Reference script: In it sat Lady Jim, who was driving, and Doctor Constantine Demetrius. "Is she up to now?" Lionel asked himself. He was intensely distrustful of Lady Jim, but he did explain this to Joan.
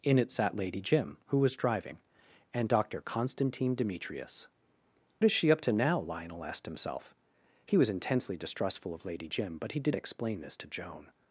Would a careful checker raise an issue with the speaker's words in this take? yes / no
no